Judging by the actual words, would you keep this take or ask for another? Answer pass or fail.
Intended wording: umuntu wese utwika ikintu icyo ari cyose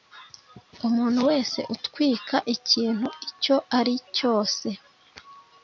pass